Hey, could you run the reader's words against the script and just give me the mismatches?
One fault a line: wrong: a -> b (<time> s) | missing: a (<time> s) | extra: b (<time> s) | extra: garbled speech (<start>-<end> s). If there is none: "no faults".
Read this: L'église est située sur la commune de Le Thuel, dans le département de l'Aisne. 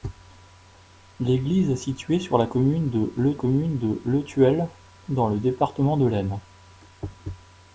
extra: commune de Le (3.3 s)